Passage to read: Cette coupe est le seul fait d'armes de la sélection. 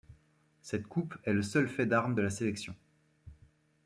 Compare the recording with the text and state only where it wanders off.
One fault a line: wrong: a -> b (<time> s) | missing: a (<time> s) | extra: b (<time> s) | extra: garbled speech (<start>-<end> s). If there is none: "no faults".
no faults